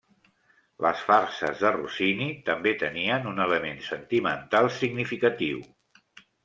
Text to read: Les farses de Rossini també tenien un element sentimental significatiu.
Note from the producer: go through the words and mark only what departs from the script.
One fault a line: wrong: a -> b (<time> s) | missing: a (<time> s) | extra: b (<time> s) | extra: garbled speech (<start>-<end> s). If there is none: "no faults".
no faults